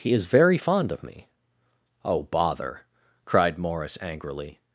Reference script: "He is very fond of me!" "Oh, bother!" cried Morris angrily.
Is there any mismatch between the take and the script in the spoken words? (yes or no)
no